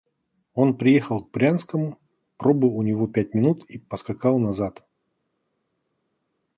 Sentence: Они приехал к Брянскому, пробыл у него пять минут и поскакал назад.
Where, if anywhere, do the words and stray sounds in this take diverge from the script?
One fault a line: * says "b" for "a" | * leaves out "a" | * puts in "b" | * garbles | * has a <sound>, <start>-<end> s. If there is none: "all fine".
* says "Он" for "Они"